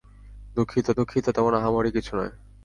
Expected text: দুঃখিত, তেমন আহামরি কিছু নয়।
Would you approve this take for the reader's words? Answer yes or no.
no